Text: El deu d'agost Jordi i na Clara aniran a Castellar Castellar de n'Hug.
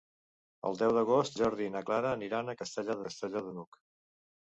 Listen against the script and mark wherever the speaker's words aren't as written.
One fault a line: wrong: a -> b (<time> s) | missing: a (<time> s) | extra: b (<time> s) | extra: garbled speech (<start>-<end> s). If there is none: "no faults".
no faults